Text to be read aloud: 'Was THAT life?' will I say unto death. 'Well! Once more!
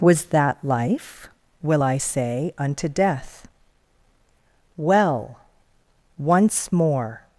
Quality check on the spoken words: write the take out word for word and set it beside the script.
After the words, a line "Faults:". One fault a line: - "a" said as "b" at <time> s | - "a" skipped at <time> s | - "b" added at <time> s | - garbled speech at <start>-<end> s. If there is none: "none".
'Was THAT life?' will I say unto death. 'Well! Once more!
Faults:
none